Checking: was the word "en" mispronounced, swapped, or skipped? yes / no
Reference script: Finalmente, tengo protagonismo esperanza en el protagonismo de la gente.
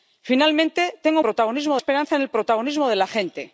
no